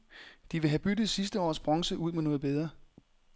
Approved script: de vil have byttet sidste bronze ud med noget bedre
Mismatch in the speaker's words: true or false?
true